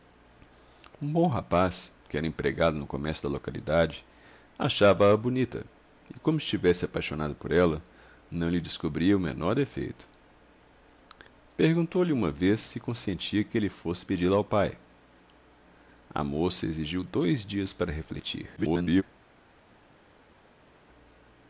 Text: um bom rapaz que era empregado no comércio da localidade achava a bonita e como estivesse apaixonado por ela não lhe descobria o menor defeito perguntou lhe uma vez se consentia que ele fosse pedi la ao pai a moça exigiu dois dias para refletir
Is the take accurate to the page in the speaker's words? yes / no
no